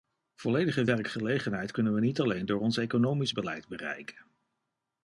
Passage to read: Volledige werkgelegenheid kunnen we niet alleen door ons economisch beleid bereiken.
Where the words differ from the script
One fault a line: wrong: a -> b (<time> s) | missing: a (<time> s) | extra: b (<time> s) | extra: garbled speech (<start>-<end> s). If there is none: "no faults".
no faults